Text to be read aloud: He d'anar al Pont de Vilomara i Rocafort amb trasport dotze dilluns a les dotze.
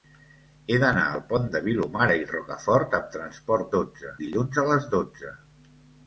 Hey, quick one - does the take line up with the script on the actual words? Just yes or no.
yes